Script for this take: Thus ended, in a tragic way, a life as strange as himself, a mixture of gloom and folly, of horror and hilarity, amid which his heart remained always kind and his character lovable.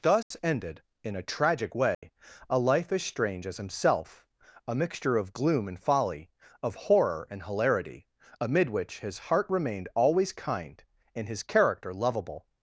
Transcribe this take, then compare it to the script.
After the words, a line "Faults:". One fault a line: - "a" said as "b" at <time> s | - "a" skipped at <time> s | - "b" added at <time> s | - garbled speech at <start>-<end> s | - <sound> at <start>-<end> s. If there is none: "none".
Thus ended, in a tragic way, a life as strange as himself, a mixture of gloom and folly, of horror and hilarity, amid which his heart remained always kind and his character lovable.
Faults:
- dropout at 0.2-0.3 s
- dropout at 1.9-2.0 s